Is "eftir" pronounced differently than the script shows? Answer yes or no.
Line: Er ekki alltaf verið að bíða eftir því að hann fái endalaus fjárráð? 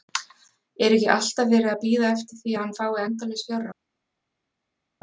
no